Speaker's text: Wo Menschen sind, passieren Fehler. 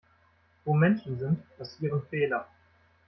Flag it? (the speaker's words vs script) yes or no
no